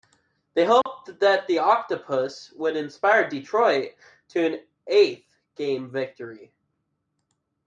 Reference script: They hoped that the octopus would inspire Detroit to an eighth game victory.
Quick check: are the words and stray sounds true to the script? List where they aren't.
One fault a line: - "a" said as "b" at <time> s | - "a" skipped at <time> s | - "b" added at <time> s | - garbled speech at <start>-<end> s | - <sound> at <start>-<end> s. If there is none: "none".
- dropout at 0.8-0.9 s